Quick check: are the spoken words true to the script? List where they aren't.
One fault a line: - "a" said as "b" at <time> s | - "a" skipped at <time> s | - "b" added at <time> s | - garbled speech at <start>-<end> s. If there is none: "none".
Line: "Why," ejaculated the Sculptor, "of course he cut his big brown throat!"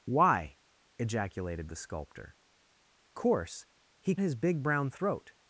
- "of" skipped at 2.4 s
- "cut" skipped at 4.2 s